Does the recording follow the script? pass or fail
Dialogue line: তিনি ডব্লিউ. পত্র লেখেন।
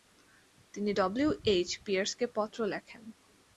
fail